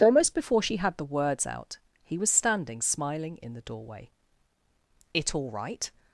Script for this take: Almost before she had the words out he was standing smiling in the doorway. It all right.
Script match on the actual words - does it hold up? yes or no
yes